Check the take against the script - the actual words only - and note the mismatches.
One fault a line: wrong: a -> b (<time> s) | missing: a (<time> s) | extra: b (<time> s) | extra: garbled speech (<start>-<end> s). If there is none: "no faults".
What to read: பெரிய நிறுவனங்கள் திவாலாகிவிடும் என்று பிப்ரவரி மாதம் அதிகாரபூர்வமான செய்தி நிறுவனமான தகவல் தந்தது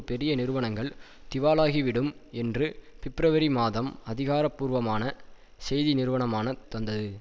missing: தகவல் (6.5 s)